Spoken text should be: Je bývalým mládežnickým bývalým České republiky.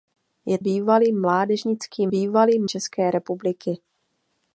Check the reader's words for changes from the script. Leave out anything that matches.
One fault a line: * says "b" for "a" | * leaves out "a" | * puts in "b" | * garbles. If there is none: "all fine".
all fine